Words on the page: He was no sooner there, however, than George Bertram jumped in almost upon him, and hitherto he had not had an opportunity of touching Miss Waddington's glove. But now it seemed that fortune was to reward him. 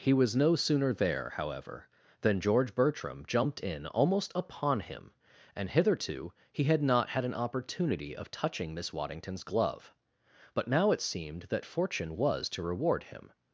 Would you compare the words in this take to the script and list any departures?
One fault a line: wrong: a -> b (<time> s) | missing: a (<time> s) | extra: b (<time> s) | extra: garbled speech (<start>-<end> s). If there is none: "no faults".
no faults